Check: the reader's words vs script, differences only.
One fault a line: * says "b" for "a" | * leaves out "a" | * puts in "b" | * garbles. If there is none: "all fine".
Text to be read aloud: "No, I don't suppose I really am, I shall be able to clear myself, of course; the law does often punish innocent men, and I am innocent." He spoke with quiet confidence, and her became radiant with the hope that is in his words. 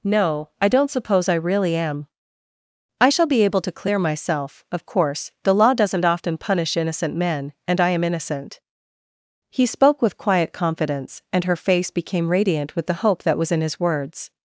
* says "doesn't" for "does"
* puts in "face"
* says "was" for "is"